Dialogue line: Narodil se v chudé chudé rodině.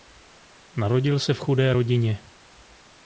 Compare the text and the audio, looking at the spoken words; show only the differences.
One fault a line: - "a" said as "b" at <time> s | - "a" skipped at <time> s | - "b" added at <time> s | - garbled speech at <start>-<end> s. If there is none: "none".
- "chudé" skipped at 1.7 s